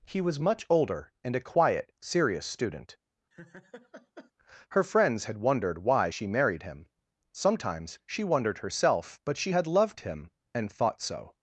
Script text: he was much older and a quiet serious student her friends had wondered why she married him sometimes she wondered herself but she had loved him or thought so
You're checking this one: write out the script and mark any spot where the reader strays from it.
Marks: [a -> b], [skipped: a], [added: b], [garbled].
he was much older and a quiet serious student her friends had wondered why she married him sometimes she wondered herself but she had loved him [or -> and] thought so